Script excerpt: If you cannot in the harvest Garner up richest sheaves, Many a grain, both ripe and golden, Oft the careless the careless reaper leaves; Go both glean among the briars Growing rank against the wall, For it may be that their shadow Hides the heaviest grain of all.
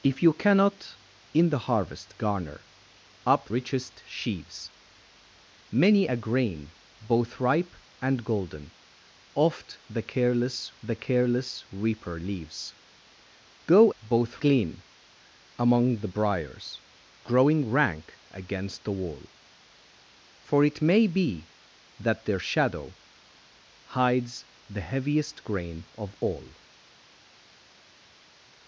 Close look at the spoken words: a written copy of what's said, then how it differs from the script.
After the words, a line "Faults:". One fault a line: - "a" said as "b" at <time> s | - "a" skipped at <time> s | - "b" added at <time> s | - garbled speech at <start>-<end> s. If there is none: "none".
If you cannot in the harvest Garner up richest sheaves, Many a grain, both ripe and golden, Oft the careless the careless reaper leaves; Go both glean among the briars Growing rank against the wall, For it may be that their shadow Hides the heaviest grain of all.
Faults:
none